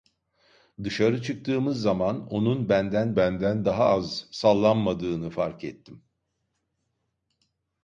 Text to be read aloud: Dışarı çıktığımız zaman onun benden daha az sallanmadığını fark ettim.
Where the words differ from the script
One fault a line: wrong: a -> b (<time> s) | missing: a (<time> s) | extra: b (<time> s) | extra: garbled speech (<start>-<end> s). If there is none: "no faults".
extra: benden (3.2 s)